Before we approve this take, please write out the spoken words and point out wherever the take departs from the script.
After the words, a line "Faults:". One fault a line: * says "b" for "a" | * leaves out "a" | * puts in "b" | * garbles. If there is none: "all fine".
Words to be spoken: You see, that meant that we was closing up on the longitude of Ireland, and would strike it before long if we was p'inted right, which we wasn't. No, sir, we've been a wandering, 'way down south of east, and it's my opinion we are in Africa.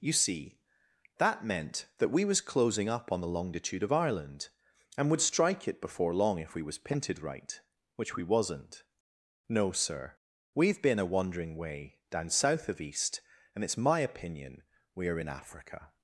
You see, that meant that we was closing up on the longitude of Ireland, and would strike it before long if we was p'inted right, which we wasn't. No, sir, we've been a wandering, 'way down south of east, and it's my opinion we are in Africa.
Faults:
all fine